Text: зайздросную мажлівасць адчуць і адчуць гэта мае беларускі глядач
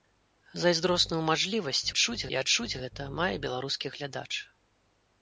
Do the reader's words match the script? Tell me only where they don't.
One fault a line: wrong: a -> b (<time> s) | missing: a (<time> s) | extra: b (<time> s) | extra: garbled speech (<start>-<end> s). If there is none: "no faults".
no faults